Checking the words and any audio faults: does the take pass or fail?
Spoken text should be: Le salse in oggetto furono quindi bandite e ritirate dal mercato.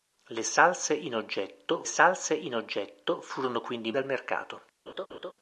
fail